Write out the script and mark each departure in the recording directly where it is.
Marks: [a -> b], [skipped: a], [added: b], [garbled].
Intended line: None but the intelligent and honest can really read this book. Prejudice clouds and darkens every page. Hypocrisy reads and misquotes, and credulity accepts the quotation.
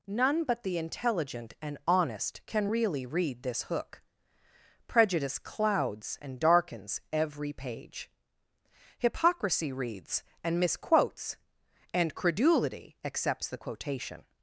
None but the intelligent and honest can really read this [book. -> hook] Prejudice clouds and darkens every page. Hypocrisy reads and misquotes, and credulity accepts the quotation.